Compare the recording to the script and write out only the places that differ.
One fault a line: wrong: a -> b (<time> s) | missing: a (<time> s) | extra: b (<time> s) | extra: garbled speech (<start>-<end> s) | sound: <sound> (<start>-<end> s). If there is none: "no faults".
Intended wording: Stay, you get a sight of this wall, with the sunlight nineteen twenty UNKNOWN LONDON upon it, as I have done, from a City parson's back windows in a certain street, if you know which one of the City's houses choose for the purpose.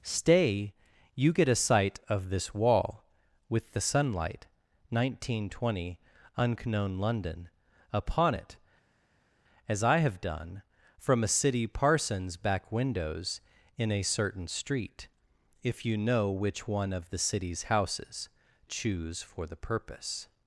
no faults